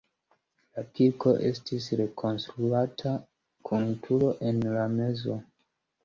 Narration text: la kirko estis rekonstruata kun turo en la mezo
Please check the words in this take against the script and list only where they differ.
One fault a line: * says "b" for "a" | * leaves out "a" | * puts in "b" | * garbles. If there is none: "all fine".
all fine